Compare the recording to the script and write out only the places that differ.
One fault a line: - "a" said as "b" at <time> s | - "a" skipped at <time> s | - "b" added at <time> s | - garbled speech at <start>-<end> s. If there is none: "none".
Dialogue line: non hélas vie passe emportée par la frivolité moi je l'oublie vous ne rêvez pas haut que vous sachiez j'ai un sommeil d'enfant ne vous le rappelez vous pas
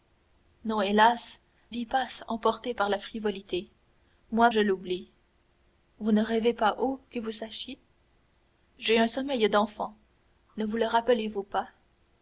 none